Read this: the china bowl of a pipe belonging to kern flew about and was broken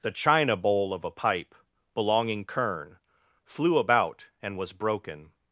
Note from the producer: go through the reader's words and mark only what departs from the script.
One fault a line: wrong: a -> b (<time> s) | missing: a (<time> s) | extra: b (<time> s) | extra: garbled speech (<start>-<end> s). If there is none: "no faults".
missing: to (2.4 s)